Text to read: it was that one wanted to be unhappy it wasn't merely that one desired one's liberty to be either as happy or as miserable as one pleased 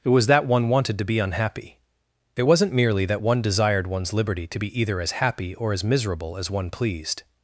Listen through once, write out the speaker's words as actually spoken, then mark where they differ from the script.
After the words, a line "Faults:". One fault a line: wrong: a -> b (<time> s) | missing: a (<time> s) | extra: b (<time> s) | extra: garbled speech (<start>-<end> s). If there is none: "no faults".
it was that one wanted to be unhappy it wasn't merely that one desired one's liberty to be either as happy or as miserable as one pleased
Faults:
no faults